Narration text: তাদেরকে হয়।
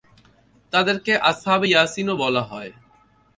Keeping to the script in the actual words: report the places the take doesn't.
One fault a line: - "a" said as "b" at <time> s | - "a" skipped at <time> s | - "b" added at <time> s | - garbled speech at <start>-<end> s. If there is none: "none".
- "আসহাবে ইয়াসীনও বলা" added at 1.2 s